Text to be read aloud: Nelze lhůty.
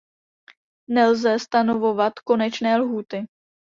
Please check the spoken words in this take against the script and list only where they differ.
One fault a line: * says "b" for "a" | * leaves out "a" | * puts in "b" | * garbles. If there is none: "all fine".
* puts in "stanovovat konečné"